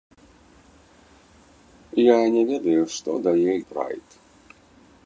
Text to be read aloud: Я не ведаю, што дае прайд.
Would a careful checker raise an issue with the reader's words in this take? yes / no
no